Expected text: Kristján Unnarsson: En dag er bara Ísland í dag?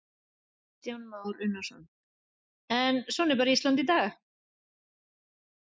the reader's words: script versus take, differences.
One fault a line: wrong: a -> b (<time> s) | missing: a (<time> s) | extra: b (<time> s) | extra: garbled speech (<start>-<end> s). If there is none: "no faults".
extra: Már (1.0 s)
wrong: dag -> svona (3.1 s)